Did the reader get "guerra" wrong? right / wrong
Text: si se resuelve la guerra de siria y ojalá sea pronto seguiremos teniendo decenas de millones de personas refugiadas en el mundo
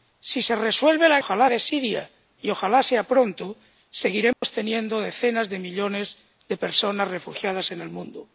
wrong